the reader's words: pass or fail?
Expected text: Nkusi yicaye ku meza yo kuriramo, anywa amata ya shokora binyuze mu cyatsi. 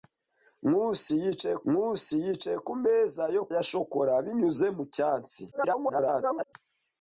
fail